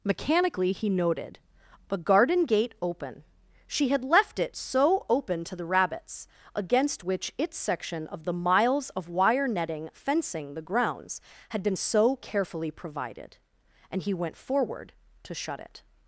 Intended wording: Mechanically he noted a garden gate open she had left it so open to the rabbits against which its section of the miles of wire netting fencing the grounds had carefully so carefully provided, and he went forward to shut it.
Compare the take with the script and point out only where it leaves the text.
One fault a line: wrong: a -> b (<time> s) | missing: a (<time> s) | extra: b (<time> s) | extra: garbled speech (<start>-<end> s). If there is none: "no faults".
wrong: carefully -> been (11.6 s)